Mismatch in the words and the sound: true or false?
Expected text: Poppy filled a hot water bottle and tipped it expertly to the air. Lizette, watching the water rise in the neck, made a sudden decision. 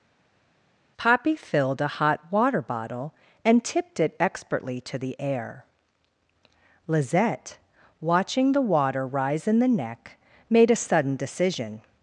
false